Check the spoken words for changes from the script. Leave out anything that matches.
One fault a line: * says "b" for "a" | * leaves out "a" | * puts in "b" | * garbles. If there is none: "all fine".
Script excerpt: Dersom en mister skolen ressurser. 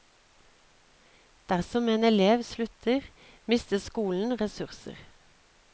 * puts in "elev slutter"